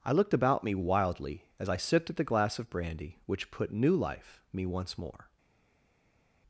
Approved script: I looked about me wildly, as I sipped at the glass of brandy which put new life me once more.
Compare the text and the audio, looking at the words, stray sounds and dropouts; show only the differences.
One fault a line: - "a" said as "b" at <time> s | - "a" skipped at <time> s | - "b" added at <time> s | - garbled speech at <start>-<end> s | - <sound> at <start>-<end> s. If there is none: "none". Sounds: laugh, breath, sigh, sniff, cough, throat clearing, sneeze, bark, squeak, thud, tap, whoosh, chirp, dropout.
none